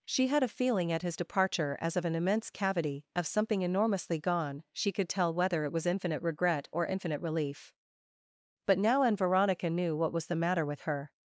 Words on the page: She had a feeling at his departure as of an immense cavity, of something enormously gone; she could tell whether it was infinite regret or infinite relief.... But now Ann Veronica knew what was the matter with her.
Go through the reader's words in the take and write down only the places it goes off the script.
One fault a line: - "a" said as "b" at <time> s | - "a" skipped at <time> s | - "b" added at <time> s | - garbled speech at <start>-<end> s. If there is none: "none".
none